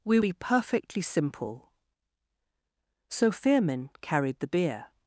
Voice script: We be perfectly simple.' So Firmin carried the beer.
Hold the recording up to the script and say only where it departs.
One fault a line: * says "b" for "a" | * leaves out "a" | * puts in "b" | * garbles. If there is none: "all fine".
all fine